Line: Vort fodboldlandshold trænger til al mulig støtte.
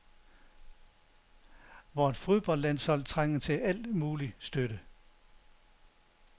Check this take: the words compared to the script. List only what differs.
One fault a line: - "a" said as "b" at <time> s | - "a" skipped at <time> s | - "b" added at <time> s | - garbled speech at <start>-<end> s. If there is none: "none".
none